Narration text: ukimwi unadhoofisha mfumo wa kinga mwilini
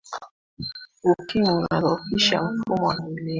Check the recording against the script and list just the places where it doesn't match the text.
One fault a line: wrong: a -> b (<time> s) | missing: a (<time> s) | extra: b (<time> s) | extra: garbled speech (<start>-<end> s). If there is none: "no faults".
missing: kinga (2.9 s)